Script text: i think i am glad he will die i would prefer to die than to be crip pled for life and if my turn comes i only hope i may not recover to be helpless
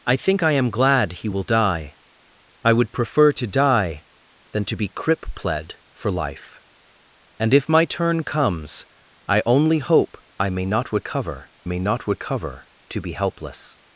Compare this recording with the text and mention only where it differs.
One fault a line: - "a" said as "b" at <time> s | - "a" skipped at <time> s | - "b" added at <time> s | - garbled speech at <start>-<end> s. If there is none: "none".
- "may not recover" added at 11.6 s